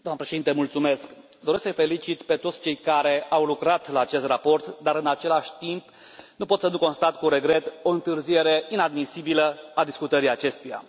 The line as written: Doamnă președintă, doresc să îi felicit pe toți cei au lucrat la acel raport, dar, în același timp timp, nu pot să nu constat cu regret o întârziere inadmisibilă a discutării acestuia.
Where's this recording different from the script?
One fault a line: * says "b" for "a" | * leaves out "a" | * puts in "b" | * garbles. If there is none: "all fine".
* puts in "care"
* says "acest" for "acel"
* leaves out "timp"